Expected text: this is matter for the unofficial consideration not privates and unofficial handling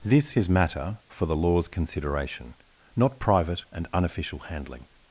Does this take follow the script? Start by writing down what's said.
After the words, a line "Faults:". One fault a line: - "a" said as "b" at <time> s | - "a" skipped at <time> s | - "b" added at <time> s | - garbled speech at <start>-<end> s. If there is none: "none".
this is matter for the law's consideration not private and unofficial handling
Faults:
- "unofficial" said as "law's" at 1.4 s
- "privates" said as "private" at 3.2 s